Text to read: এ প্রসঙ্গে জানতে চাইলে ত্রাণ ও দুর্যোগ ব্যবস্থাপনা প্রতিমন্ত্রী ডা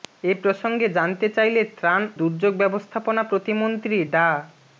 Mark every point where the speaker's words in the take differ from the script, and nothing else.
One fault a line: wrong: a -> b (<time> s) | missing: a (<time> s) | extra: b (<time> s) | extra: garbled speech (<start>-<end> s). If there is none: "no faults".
missing: ও (2.0 s)